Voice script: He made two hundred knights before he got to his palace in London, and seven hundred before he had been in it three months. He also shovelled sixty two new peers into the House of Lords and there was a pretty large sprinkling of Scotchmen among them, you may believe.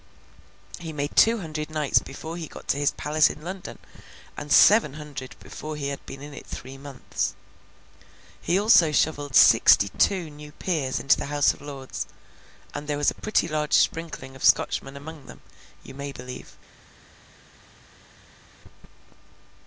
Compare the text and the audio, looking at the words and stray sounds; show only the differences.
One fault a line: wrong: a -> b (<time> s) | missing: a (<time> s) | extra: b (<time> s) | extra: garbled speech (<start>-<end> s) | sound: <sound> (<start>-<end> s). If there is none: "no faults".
no faults